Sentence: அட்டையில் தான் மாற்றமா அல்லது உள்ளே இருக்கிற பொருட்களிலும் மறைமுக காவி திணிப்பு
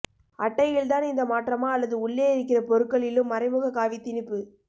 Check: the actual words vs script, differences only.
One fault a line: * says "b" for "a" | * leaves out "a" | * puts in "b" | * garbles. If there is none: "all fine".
* puts in "இந்த"